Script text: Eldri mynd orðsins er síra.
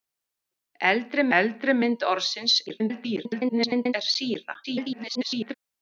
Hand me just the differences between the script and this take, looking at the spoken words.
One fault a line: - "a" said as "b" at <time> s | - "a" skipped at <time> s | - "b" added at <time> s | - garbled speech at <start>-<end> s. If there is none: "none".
- "eldri" added at 1.4 s
- garbled speech at 2.7-3.9 s
- garbled speech at 4.6-5.5 s